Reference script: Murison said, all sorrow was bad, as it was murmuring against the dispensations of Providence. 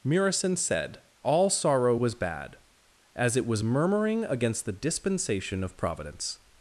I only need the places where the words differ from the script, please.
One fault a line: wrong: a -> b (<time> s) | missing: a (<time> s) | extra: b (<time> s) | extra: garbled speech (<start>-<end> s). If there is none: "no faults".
wrong: dispensations -> dispensation (4.7 s)